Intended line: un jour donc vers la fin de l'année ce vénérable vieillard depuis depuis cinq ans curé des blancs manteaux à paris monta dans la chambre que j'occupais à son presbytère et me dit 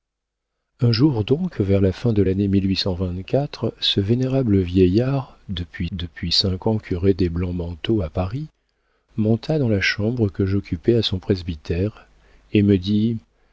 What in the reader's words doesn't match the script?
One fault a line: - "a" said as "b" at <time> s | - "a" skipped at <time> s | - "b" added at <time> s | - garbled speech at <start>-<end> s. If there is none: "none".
none